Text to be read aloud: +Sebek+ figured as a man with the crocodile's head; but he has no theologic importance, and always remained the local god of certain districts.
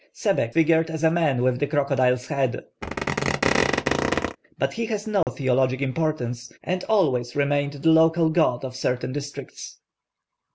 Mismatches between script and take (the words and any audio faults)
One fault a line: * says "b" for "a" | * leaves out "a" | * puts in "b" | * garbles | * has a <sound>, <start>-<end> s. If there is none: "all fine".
* has a squeak, 2.8-4.4 s
* has a dropout, 5.2-5.3 s